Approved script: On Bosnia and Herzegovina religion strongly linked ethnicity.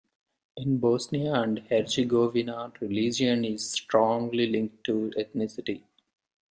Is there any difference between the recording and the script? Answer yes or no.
yes